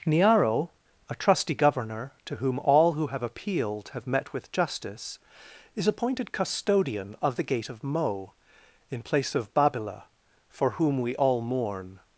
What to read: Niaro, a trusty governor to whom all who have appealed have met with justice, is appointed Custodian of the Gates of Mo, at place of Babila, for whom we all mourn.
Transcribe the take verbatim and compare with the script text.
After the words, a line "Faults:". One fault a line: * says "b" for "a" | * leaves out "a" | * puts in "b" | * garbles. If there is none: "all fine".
Niaro, a trusty governor to whom all who have appealed have met with justice, is appointed Custodian of the Gate of Mo, in place of Babila, for whom we all mourn.
Faults:
* says "Gate" for "Gates"
* says "in" for "at"